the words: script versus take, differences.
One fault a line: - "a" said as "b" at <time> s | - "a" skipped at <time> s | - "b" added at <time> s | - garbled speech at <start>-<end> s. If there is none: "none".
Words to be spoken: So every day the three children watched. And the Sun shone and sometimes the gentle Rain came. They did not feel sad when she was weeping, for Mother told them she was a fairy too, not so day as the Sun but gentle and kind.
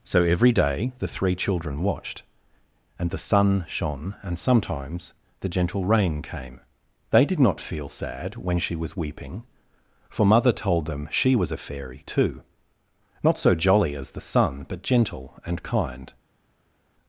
- "day" said as "jolly" at 13.5 s